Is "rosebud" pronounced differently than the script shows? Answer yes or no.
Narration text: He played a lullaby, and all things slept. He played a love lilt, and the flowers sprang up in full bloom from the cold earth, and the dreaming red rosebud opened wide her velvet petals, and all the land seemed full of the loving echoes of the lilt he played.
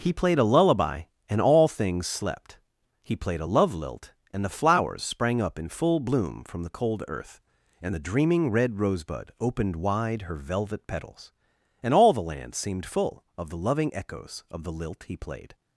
no